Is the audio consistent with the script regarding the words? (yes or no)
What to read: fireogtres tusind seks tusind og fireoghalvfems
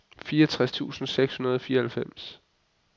no